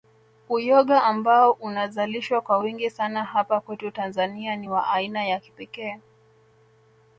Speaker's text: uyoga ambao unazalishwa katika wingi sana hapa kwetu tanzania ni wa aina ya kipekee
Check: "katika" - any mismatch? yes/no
yes